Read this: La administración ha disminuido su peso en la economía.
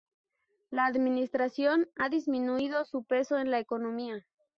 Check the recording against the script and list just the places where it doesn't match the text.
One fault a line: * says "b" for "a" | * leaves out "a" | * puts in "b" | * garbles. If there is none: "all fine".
all fine